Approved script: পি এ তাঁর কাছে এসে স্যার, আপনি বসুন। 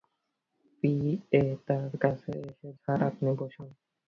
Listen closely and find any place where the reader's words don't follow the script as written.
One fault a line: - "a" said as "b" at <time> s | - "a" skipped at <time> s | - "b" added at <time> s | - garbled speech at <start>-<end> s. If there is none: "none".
none